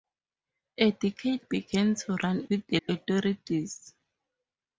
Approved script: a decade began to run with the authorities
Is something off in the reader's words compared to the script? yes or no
no